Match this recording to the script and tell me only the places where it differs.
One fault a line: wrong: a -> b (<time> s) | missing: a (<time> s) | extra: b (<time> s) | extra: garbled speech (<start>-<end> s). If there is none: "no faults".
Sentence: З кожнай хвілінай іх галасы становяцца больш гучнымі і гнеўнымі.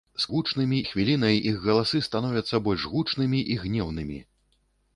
wrong: кожнай -> гучнымі (0.3 s)